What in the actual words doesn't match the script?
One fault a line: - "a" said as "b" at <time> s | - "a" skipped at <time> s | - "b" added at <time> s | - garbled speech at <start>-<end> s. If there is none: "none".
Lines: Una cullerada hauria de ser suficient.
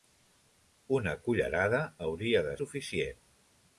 - "ser" skipped at 2.6 s